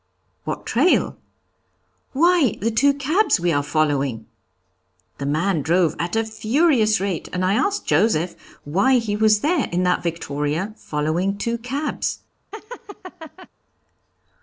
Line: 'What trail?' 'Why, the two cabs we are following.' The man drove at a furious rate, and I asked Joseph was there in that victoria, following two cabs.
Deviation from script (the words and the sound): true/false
true